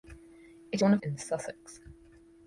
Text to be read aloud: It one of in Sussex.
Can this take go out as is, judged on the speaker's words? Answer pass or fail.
pass